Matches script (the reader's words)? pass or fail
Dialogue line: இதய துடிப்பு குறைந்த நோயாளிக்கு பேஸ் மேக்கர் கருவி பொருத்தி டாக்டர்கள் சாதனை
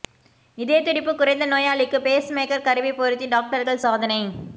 pass